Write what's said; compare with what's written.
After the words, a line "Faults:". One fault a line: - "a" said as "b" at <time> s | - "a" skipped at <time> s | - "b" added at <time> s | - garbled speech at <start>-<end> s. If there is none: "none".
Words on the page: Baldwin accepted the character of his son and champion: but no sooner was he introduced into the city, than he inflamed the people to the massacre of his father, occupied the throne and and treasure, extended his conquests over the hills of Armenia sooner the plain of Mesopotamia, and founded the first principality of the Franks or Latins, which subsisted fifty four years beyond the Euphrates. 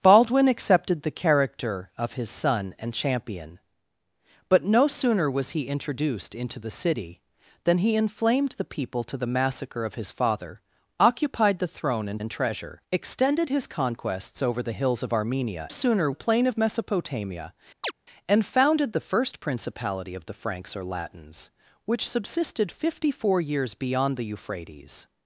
Baldwin accepted the character of his son and champion: but no sooner was he introduced into the city, than he inflamed the people to the massacre of his father, occupied the throne and and treasure, extended his conquests over the hills of Armenia sooner the plain of Mesopotamia, and founded the first principality of the Franks or Latins, which subsisted fifty four years beyond the Euphrates.
Faults:
none